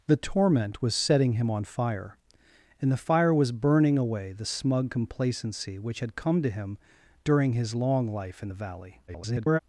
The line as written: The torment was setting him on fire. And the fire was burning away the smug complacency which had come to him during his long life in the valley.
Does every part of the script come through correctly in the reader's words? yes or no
no